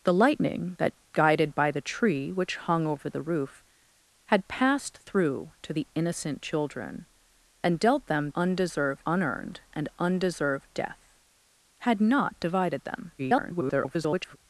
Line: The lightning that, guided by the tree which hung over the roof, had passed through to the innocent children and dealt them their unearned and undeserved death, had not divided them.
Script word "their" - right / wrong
wrong